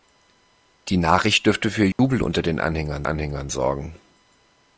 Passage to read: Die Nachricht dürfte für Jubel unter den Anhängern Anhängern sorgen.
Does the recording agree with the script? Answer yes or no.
yes